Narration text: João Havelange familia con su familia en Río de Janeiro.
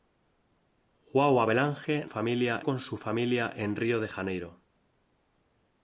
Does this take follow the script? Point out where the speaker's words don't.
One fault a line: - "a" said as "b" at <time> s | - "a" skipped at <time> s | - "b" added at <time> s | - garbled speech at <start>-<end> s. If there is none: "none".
none